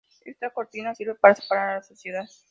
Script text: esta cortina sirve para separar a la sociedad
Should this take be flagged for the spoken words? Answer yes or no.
no